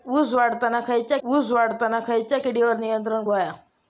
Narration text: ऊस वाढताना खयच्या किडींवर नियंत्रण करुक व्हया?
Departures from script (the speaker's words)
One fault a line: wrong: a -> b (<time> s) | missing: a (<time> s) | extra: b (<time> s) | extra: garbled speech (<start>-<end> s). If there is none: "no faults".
extra: ऊस वाढताना खयच्या (1.2 s)
missing: करुक (3.2 s)